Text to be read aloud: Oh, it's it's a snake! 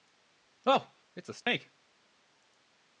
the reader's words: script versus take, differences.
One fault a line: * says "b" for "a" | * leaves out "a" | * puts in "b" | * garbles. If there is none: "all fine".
* leaves out "it's"